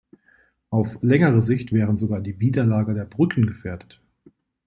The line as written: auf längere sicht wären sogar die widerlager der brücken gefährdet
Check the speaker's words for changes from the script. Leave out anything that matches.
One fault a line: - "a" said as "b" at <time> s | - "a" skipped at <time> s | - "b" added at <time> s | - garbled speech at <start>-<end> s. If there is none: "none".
none